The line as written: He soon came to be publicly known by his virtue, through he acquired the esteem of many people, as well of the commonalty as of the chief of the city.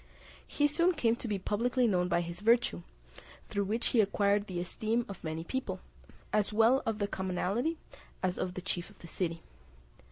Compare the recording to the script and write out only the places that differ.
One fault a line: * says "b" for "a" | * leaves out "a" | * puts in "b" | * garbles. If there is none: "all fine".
* puts in "which"